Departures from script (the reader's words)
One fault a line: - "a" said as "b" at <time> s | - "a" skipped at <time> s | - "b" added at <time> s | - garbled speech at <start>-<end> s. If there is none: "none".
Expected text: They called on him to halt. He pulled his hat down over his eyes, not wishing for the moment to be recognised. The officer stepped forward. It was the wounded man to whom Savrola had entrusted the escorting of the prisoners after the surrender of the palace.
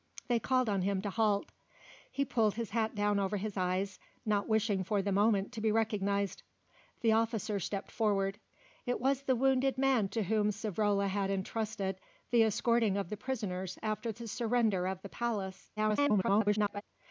- garbled speech at 15.8-16.8 s